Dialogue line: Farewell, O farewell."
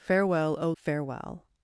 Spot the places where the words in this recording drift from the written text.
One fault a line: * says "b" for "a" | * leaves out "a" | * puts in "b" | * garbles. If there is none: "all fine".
all fine